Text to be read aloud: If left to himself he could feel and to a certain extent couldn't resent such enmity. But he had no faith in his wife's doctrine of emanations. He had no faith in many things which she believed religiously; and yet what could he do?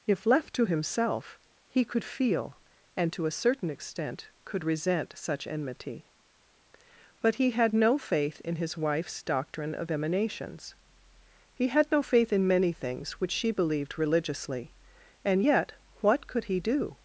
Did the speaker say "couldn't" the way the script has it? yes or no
no